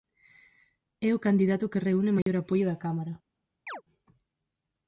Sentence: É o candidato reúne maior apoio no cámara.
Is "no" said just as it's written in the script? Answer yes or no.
no